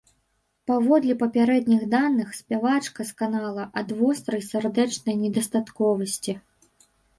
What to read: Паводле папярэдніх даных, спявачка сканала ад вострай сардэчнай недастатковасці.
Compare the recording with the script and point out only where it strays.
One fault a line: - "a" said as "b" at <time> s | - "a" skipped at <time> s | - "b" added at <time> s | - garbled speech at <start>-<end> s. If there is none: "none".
none